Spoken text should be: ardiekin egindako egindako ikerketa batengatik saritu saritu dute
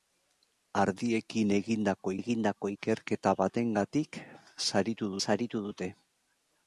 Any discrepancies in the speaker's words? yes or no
no